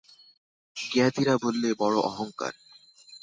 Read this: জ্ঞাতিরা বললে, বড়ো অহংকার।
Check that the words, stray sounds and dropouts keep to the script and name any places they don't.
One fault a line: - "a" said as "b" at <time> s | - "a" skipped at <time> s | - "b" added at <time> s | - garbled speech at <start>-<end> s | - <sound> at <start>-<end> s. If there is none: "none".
none